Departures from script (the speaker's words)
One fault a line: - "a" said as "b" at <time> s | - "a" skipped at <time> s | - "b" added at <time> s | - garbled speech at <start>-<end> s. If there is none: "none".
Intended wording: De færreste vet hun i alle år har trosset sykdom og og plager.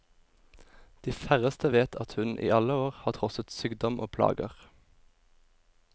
- "at" added at 2.0 s
- "og" skipped at 4.1 s